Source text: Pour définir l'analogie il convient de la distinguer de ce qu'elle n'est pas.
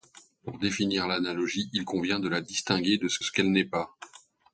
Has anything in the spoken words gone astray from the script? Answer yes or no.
yes